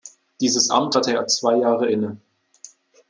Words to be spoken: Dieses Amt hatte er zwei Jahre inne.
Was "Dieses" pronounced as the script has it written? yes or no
yes